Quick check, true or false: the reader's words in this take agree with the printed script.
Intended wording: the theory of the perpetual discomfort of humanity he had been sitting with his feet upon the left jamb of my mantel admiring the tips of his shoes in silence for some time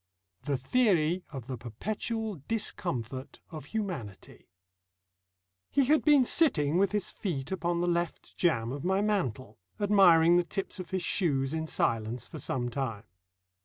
true